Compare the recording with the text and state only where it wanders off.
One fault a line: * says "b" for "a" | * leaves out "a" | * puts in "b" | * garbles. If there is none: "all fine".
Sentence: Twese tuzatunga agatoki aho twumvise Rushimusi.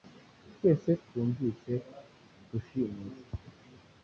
* leaves out "tuzatunga agatoki aho"